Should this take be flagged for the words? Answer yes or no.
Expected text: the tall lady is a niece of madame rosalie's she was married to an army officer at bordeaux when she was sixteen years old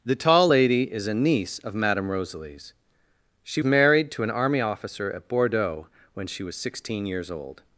yes